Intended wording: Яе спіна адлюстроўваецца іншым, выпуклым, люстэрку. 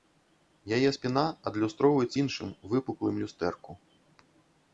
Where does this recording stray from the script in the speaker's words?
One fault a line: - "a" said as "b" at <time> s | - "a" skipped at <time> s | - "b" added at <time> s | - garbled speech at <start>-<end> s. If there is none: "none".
none